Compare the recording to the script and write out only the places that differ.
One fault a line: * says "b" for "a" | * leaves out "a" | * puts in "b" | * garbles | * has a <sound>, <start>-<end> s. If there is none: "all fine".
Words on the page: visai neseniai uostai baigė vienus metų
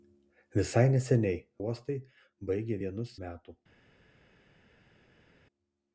all fine